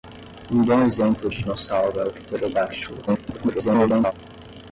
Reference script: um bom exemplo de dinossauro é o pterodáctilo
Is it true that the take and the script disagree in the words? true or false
true